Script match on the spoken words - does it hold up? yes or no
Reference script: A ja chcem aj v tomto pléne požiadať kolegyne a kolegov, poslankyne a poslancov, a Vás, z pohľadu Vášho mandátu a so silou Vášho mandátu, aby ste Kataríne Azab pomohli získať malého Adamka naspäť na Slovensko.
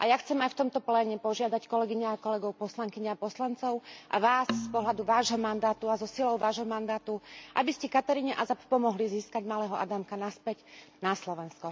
yes